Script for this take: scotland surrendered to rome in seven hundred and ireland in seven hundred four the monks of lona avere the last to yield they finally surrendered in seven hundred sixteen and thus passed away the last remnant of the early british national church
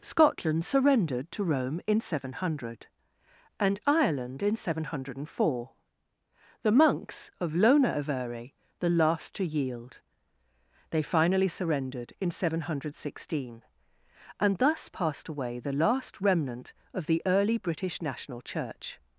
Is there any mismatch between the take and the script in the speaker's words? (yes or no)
no